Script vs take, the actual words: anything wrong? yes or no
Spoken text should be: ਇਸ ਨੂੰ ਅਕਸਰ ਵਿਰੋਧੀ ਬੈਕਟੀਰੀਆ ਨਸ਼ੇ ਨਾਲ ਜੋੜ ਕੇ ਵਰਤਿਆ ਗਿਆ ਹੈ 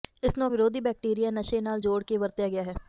yes